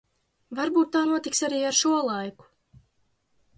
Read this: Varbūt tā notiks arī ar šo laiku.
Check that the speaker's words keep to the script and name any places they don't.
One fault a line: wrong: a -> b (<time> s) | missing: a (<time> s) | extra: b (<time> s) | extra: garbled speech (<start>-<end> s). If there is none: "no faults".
no faults